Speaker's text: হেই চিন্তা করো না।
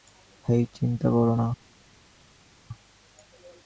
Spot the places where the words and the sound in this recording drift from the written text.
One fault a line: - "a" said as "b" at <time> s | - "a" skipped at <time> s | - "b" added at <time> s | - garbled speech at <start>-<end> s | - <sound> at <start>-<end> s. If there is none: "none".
none